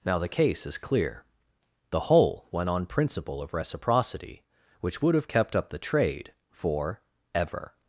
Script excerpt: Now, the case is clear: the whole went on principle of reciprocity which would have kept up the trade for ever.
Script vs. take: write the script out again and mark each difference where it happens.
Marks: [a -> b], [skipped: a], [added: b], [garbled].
Now, the case is clear: the whole went on principle of reciprocity which would have kept up the trade for ever.